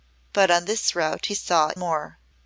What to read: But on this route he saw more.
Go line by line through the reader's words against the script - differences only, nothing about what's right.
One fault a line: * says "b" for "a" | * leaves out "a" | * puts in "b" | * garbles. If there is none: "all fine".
all fine